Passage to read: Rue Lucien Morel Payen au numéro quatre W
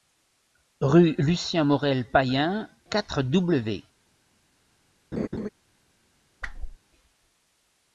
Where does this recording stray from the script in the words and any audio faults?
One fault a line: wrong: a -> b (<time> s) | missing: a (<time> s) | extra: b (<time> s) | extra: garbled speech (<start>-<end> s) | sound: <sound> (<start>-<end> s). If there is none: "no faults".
missing: au numéro (2.7 s)
sound: laugh (5.1-5.5 s)
sound: whoosh (6.4-6.8 s)